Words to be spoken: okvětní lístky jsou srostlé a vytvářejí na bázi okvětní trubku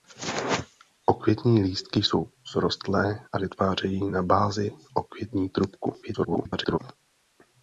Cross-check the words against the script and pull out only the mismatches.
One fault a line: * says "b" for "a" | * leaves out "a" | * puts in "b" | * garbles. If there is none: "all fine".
* garbles